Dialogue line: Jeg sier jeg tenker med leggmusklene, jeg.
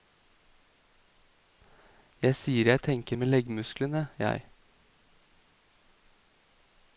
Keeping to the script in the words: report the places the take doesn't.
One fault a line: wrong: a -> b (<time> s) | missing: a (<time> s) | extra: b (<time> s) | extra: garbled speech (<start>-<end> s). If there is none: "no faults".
no faults